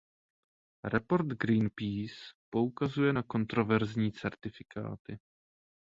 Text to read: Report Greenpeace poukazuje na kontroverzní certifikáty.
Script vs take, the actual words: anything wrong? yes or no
no